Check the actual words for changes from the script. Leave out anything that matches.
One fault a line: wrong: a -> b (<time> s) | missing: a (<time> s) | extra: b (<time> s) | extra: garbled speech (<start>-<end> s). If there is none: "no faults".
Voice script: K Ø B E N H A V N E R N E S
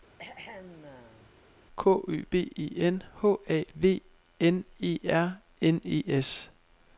no faults